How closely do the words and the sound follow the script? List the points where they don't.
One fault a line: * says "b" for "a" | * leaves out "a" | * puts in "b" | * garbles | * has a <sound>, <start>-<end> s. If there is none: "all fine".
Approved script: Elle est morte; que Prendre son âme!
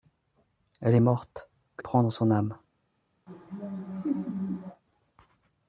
* has a laugh, 3.3-4.8 s